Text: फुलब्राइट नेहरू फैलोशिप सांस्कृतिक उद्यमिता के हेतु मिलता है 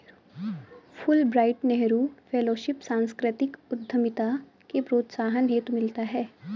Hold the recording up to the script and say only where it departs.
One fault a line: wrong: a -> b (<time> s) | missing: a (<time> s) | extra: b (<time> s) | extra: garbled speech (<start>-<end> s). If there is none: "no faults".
extra: प्रोत्साहन (4.8 s)